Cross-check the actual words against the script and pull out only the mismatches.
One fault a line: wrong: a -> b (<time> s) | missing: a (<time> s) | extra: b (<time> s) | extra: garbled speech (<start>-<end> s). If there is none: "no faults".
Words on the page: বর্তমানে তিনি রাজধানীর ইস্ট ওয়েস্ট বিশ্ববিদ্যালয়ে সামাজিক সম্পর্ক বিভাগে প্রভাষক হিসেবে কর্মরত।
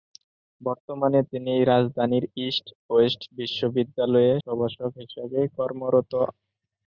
missing: সামাজিক সম্পর্ক বিভাগে (4.3 s)